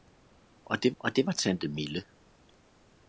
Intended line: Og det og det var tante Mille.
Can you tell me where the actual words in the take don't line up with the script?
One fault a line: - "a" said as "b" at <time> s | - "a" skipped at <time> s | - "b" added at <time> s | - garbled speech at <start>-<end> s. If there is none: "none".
none